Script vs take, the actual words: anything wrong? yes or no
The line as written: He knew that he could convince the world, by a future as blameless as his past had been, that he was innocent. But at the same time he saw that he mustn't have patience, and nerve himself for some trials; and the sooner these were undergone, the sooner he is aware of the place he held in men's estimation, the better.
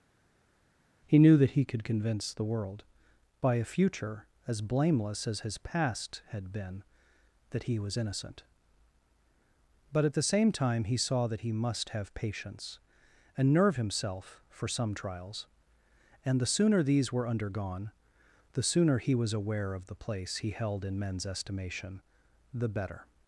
yes